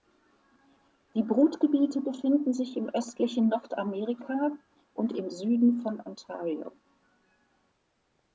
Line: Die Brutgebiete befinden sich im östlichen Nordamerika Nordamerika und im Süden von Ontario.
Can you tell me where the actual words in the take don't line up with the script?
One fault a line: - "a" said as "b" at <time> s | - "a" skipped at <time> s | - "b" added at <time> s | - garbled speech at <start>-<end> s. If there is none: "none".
- "Nordamerika" skipped at 4.6 s